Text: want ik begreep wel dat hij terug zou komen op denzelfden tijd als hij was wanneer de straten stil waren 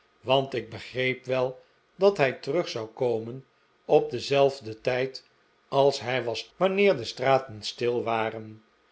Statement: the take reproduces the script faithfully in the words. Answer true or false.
true